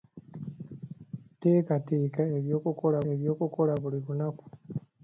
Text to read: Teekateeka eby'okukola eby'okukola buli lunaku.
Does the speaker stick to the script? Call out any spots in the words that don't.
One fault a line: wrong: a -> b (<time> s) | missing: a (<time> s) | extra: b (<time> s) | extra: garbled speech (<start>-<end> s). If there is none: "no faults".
no faults